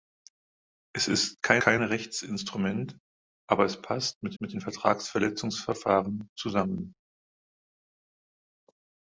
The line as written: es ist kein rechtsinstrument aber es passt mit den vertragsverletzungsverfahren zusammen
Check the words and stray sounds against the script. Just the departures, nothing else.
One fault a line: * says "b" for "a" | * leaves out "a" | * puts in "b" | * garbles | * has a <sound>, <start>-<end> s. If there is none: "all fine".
* puts in "kein"
* puts in "mit"